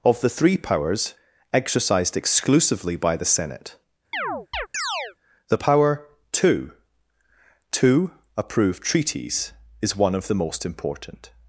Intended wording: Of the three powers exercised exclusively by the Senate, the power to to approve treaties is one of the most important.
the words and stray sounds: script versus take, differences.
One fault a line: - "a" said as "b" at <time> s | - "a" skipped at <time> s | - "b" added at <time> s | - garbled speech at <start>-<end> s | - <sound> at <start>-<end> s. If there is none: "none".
- chirp at 4.1-5.2 s